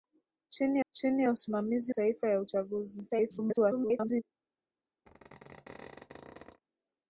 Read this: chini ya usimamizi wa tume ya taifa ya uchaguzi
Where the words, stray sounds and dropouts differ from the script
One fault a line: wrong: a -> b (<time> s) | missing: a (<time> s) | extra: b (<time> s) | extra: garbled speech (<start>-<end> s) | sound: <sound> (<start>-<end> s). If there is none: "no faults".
extra: chini (0.9 s)
missing: wa tume ya (1.9 s)
extra: garbled speech (3.1-4.2 s)
sound: squeak (5.1-6.6 s)